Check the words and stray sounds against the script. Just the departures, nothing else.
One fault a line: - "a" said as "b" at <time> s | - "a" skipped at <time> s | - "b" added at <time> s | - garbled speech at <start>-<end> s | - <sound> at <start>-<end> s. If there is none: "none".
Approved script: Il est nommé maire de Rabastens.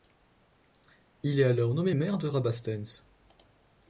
- "alors" added at 1.4 s